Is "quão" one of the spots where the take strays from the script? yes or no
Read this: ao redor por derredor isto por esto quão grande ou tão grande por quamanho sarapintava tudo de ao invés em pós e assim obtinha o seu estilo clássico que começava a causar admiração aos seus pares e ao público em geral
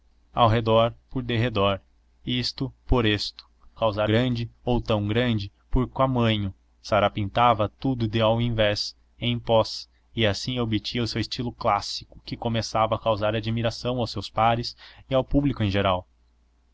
yes